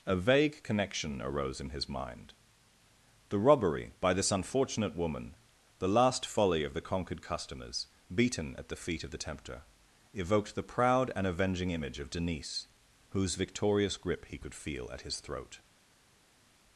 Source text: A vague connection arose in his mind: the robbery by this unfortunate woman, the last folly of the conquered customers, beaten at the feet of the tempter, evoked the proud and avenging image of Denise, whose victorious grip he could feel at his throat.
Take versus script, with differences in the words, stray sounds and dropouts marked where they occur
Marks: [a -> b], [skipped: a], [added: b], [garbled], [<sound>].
A vague connection arose in his mind: the robbery by this unfortunate woman, the last folly of the conquered customers, beaten at the feet of the tempter, evoked the proud and avenging image of Denise, whose victorious grip he could feel at his throat.